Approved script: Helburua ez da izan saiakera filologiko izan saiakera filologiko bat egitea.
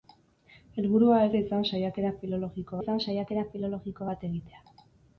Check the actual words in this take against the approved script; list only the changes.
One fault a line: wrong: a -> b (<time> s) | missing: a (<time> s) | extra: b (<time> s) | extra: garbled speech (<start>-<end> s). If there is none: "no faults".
no faults